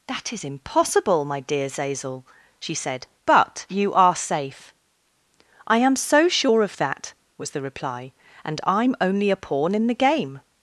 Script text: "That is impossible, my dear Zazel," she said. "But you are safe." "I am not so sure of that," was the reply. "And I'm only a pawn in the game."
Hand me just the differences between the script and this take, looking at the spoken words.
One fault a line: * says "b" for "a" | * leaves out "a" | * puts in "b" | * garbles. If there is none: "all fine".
* leaves out "not"